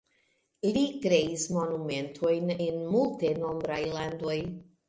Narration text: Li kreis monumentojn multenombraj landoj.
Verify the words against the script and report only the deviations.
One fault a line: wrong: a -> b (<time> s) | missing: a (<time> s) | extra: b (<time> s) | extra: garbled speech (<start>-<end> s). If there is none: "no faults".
extra: en (2.7 s)